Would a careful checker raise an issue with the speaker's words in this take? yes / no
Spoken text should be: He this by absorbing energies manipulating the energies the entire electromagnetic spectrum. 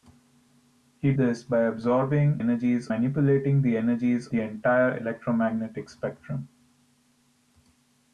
no